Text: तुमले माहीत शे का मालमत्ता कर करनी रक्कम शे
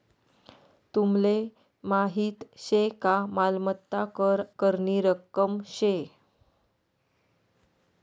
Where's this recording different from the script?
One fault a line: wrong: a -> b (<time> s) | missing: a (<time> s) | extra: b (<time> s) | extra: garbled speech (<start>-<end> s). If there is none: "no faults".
no faults